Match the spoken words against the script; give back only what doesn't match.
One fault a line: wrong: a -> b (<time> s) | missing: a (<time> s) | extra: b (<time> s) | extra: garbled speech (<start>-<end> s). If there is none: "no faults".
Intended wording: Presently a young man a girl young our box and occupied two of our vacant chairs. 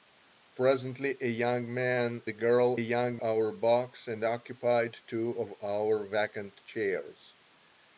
no faults